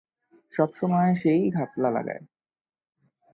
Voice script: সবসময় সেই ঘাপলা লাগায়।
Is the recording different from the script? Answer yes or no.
no